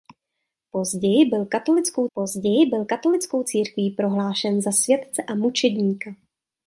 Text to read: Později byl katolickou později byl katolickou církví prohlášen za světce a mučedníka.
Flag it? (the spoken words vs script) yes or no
no